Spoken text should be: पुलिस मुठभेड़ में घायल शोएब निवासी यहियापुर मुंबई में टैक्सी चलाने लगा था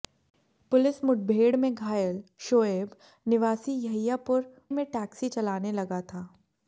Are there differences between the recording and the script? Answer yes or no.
yes